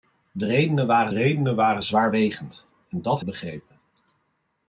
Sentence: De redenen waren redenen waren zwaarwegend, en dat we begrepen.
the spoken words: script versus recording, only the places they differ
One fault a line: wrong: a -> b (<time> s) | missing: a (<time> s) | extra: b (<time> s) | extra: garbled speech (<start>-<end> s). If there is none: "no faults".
no faults